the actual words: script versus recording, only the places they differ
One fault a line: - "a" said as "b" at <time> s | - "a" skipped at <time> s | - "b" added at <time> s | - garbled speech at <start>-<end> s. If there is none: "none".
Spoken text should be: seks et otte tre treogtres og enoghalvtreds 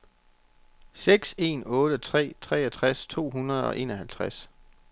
- "et" said as "en" at 1.4 s
- "to hundrede" added at 3.1 s